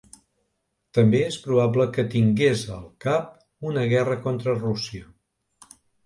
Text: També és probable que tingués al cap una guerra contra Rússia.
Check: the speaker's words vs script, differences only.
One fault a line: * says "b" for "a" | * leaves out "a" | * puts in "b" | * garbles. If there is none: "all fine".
all fine